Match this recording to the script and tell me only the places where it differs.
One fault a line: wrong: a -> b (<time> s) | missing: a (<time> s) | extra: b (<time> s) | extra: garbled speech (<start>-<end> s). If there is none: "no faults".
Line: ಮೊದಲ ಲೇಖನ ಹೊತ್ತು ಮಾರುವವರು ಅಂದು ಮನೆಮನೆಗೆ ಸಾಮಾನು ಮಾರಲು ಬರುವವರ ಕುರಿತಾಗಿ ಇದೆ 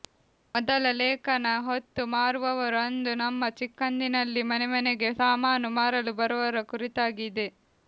extra: ನಮ್ಮ ಚಿಕ್ಕಂದಿನಲ್ಲಿ (3.2 s)